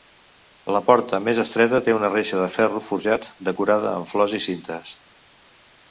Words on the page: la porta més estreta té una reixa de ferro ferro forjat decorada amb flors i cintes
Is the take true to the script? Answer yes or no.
no